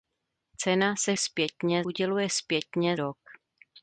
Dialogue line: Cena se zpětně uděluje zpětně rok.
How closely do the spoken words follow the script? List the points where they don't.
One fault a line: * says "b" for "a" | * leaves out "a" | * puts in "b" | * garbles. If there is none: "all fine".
all fine